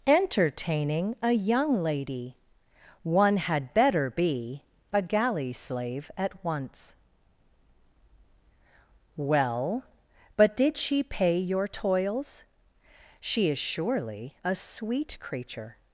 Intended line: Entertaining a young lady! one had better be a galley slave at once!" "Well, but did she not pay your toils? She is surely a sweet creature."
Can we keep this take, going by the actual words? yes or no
no